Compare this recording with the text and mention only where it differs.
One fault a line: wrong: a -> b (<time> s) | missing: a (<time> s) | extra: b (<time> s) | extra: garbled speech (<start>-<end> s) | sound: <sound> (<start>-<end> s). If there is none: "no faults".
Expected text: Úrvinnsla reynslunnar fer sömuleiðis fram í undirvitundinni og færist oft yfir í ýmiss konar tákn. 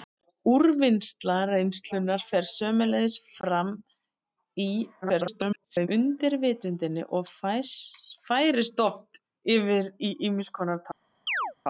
extra: garbled speech (5.0-5.9 s)
sound: chirp (11.3-11.5 s)